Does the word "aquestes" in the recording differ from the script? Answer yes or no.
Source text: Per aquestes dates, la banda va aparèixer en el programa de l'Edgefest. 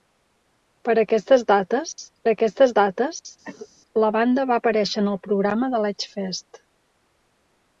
no